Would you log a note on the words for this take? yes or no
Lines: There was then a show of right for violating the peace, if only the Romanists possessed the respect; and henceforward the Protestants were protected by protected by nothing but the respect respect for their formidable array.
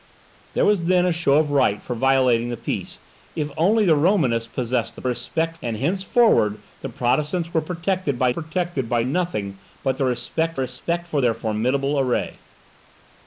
no